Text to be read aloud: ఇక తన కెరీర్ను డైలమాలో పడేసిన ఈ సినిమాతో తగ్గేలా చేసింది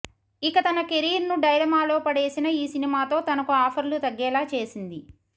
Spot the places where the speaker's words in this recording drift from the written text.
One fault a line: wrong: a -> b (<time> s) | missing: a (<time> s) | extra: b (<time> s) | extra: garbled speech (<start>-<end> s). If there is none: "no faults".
extra: తనకు ఆఫర్లు (3.2 s)